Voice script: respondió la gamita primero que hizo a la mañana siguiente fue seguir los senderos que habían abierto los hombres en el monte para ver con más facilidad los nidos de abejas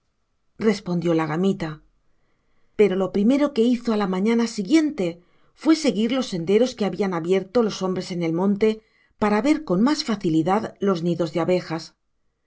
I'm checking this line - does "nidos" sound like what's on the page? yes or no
yes